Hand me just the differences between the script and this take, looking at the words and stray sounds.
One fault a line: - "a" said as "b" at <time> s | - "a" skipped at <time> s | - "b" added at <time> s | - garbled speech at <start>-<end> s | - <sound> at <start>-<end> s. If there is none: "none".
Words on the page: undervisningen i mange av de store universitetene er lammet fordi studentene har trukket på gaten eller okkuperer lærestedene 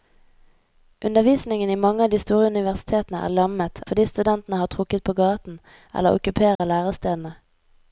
- dropout at 6.5-6.6 s